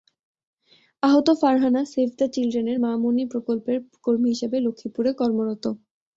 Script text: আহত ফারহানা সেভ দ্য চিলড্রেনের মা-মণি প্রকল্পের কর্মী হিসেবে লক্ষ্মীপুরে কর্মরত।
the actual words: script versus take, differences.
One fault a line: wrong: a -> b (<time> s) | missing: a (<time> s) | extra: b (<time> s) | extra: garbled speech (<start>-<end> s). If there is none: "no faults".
no faults